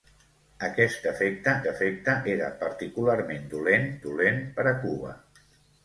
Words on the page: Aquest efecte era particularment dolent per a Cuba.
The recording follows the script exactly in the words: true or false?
false